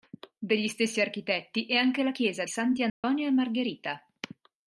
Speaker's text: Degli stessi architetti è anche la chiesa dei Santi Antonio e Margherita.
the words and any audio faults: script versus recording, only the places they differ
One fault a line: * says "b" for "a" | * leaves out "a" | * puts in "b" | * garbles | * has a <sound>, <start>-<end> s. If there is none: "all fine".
* leaves out "dei"
* has a dropout, 2.9-3.0 s